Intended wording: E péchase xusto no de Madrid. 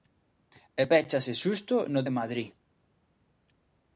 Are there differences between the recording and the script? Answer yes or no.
no